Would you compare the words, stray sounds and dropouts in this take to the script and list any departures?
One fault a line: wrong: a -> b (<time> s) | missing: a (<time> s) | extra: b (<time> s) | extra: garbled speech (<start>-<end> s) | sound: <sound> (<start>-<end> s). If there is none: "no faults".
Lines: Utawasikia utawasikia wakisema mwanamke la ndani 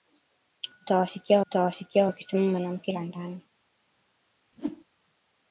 sound: whoosh (4.5-4.8 s)